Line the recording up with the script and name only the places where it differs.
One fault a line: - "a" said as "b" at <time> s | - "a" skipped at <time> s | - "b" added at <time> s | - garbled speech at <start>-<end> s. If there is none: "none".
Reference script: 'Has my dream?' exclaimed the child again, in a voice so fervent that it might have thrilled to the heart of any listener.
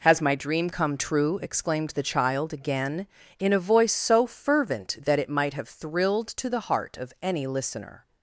- "come true" added at 0.7 s